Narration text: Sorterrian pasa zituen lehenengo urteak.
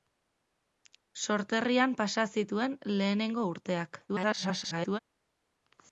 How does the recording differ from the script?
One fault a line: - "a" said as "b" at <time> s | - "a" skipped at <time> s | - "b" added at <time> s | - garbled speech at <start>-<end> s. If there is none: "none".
- garbled speech at 4.1-5.0 s